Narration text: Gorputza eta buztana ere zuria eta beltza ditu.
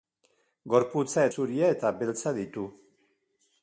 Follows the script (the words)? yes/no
no